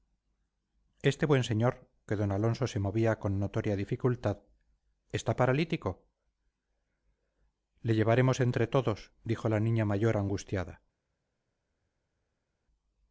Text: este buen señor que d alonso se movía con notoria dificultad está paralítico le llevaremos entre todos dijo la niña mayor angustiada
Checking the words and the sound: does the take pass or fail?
pass